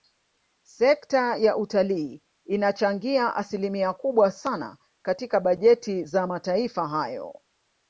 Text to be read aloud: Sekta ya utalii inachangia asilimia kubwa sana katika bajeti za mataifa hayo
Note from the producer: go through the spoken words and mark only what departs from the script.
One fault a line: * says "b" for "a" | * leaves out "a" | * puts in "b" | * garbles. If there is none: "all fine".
all fine